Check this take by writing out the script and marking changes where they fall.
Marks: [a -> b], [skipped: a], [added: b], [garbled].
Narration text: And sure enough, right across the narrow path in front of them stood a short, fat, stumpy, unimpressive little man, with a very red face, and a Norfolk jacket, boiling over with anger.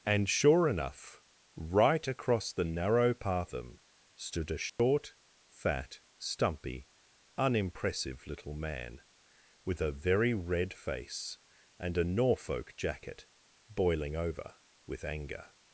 And sure enough, right across the narrow path [skipped: in front of] them stood a short, fat, stumpy, unimpressive little man, with a very red face, and a Norfolk jacket, boiling over with anger.